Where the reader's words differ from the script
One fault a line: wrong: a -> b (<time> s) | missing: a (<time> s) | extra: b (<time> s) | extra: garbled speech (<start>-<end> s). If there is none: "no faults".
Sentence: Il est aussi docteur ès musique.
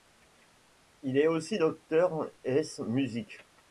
no faults